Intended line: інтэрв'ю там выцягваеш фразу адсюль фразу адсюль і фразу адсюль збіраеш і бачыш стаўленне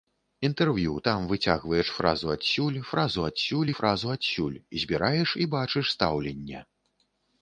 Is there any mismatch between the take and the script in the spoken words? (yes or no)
no